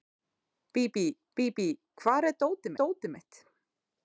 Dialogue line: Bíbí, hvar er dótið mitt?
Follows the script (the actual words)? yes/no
no